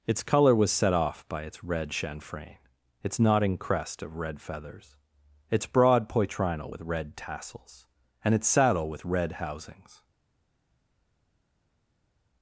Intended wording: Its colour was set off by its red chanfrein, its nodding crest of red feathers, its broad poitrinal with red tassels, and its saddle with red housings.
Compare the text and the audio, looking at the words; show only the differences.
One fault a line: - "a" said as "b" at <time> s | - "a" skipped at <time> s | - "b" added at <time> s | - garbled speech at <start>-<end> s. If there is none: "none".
none